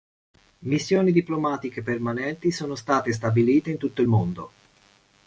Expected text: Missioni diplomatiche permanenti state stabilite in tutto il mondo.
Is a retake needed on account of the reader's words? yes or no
yes